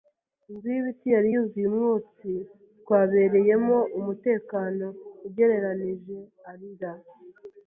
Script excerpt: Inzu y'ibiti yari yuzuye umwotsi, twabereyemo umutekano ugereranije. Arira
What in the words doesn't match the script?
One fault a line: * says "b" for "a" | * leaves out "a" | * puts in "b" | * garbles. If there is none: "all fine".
all fine